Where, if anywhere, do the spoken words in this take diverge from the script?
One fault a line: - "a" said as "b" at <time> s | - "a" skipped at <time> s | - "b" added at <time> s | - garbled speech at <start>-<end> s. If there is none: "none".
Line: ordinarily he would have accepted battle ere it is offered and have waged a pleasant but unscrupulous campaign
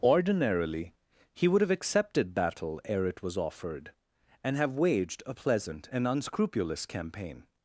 - "is" said as "was" at 3.2 s
- "but" said as "and" at 5.9 s